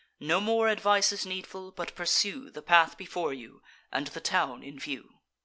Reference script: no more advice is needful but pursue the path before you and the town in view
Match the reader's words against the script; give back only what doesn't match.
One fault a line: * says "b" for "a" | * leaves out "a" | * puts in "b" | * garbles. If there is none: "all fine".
all fine